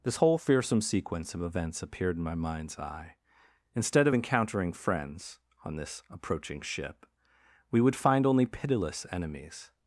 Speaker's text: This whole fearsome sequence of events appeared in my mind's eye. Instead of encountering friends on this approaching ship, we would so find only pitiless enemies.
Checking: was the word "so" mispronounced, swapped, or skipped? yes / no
yes